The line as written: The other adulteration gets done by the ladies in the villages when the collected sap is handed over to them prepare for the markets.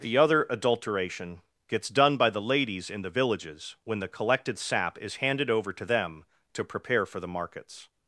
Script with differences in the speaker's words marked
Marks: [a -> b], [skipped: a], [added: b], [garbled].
The other adulteration gets done by the ladies in the villages when the collected sap is handed over to them [added: to] prepare for the markets.